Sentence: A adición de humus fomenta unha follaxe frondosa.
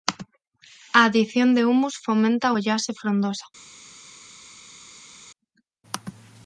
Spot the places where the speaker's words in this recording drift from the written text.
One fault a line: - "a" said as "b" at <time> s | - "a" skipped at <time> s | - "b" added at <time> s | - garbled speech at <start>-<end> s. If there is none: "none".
- "unha" skipped at 2.5 s